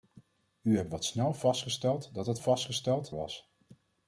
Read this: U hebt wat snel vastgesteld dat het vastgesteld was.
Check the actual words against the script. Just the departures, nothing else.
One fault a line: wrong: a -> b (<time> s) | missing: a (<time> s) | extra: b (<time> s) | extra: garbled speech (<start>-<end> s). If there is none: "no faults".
no faults